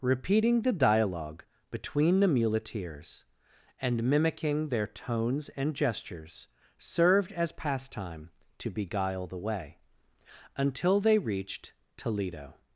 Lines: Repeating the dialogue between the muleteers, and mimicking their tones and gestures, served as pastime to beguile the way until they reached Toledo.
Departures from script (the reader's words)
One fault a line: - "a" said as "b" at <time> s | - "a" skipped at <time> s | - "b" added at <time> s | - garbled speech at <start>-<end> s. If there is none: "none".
none